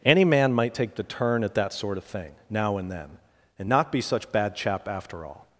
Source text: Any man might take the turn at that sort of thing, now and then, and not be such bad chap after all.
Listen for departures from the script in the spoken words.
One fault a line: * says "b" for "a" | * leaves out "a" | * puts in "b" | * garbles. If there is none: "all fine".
all fine